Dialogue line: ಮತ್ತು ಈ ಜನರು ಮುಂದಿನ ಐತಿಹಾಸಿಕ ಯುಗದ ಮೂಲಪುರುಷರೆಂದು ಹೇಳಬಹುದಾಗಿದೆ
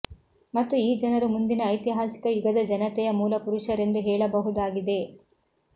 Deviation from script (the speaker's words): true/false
true